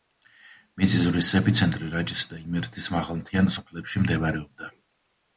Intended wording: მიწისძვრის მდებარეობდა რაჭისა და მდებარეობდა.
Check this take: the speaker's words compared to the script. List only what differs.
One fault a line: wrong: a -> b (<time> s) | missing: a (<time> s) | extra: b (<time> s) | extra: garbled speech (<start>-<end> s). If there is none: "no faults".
wrong: მდებარეობდა -> ეპიცენტრი (1.4 s)
extra: იმერეთის მაღალმთიან სოფლებში (2.4 s)